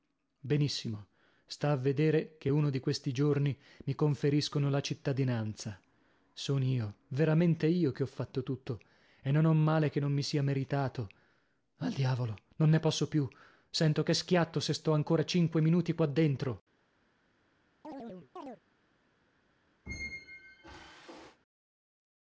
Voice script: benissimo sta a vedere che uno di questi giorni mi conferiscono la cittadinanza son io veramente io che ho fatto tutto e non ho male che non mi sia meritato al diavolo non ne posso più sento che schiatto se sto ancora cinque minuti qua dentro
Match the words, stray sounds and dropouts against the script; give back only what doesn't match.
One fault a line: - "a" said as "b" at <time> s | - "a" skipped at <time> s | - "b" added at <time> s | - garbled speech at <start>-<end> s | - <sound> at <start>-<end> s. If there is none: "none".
- chirp at 17.8-18.6 s
- squeak at 19.9-21.4 s